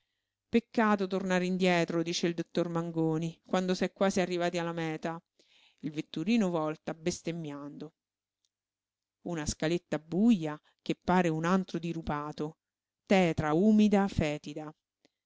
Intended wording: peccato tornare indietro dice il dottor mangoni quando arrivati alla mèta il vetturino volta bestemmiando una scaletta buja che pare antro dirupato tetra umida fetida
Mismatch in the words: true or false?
true